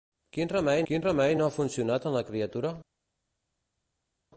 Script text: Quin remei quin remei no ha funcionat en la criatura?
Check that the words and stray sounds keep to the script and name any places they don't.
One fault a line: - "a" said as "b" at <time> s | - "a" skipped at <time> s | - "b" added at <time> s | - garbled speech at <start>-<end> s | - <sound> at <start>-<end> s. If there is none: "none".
none